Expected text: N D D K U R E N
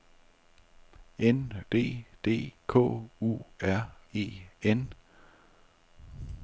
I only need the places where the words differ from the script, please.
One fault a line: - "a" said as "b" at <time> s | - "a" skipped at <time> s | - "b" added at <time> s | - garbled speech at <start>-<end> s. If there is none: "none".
none